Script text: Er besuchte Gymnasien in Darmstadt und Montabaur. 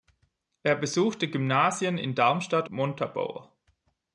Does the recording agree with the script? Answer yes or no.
no